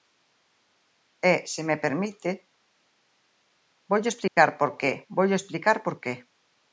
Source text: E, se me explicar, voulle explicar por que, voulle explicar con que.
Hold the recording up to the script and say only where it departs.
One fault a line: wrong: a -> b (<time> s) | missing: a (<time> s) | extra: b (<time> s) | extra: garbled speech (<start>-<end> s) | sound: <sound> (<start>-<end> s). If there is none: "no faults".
wrong: explicar -> permite (1.9 s)
sound: dropout (4.3-4.4 s)
wrong: con -> por (5.9 s)